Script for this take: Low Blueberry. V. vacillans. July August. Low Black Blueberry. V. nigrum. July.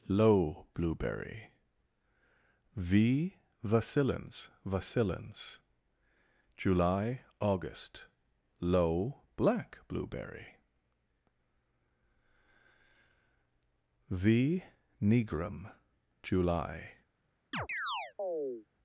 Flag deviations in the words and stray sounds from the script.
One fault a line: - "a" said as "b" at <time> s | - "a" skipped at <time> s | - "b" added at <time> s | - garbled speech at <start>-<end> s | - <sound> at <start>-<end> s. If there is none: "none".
- "vacillans" added at 4.6 s
- chirp at 17.5-18.7 s